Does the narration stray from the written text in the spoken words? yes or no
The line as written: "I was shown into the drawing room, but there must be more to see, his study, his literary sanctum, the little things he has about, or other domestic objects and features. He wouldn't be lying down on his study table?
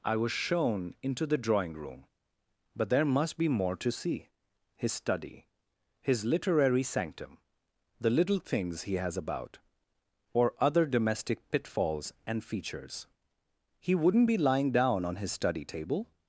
yes